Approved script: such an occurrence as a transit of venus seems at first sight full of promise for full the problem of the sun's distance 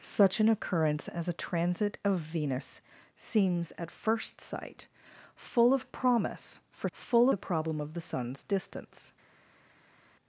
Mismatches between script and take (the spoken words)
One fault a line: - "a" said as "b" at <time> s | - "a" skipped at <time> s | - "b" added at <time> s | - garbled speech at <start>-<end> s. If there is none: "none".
none